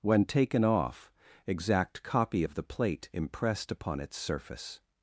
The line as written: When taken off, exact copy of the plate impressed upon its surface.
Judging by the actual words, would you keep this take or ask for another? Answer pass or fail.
pass